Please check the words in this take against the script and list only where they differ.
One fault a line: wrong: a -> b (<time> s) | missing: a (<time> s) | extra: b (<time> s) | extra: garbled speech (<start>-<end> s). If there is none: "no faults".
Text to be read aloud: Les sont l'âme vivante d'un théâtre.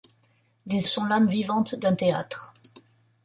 no faults